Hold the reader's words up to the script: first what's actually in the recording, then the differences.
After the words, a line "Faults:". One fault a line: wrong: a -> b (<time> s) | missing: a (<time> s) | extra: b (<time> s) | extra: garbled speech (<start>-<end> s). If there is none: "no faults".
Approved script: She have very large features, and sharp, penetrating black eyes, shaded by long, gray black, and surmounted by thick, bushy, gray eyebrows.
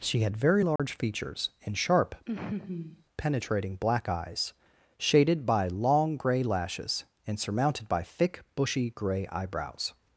She had very large features, and sharp, penetrating black eyes, shaded by long, gray lashes, and surmounted by thick, bushy, gray eyebrows.
Faults:
wrong: have -> had (0.2 s)
wrong: black -> lashes (6.4 s)